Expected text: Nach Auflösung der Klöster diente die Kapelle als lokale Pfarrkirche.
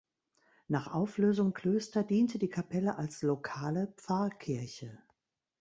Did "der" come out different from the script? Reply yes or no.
yes